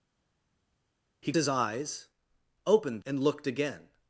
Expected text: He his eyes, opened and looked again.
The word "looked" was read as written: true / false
true